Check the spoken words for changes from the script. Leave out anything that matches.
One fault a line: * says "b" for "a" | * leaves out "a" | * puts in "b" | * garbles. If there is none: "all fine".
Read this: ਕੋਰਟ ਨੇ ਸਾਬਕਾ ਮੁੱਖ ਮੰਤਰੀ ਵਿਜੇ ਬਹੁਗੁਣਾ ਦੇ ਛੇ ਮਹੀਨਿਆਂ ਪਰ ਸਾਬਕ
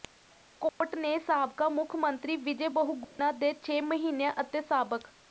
* says "ਅਤੇ" for "ਪਰ"